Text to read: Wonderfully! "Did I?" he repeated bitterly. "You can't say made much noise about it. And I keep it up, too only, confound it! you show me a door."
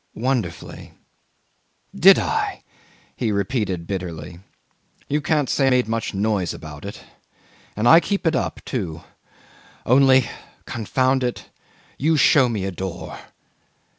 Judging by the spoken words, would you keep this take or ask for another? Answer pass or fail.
pass